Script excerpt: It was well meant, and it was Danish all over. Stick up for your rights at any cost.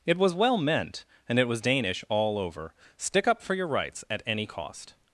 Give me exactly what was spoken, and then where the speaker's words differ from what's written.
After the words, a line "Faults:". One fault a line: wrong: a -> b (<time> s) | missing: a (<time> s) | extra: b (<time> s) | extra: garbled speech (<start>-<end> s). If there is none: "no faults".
It was well meant, and it was Danish all over. Stick up for your rights at any cost.
Faults:
no faults